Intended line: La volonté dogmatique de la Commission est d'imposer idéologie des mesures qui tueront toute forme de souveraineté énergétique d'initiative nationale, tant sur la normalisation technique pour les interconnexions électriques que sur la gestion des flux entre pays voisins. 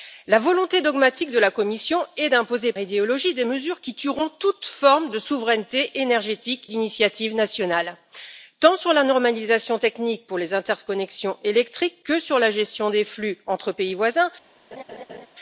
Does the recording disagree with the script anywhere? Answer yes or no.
no